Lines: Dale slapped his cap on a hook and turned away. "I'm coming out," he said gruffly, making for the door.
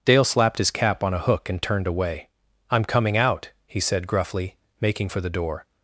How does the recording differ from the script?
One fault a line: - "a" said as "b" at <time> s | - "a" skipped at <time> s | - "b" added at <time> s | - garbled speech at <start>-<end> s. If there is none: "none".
none